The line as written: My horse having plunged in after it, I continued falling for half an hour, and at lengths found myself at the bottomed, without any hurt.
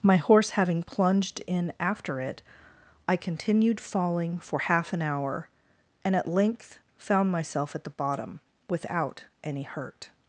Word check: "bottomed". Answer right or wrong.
wrong